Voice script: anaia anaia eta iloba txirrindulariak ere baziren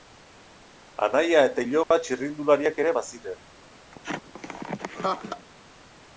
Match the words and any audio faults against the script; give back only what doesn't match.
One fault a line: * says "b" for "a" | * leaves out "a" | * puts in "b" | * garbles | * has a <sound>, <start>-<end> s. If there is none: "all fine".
* leaves out "anaia"
* has a dropout, 1.8-1.9 s
* has a laugh, 3.9-5.5 s